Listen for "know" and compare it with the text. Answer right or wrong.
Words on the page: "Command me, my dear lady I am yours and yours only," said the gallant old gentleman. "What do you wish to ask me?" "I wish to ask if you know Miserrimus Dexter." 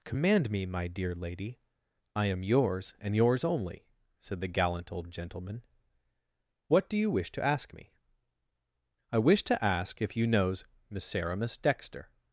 wrong